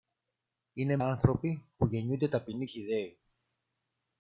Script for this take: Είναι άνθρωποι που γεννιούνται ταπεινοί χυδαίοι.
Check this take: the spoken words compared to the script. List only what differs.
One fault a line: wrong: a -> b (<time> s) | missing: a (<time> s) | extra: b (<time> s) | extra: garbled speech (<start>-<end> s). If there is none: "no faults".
no faults